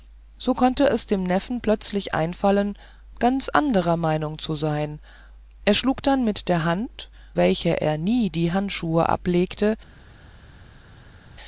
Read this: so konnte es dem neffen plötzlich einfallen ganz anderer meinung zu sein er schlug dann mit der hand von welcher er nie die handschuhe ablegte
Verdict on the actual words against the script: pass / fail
fail